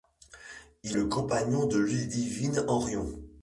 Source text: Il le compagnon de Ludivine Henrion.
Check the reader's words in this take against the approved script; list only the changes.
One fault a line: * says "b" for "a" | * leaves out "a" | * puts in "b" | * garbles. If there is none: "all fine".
all fine